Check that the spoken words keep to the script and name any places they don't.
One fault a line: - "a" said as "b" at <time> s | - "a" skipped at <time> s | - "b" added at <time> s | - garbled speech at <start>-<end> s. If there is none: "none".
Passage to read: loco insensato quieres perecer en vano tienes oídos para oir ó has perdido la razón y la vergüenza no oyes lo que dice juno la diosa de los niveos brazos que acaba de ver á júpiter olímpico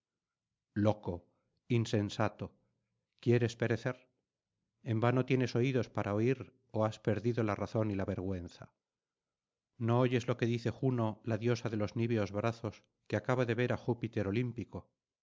none